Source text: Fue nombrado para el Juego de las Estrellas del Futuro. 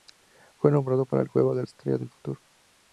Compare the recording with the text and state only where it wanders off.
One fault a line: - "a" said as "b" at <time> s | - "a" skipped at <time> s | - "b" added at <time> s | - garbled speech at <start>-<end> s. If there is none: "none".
- "las" skipped at 1.6 s